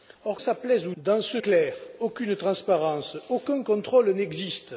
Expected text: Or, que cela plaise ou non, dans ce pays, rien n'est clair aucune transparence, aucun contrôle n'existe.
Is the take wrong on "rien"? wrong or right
wrong